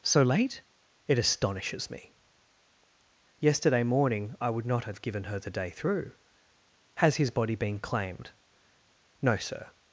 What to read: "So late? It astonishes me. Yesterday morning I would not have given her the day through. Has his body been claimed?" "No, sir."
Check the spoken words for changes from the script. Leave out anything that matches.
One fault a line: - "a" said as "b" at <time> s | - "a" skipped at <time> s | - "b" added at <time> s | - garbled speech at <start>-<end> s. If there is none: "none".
none